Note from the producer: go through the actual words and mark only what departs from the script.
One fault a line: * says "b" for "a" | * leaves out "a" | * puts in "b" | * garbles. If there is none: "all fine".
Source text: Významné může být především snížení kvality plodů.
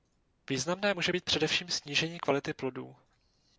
all fine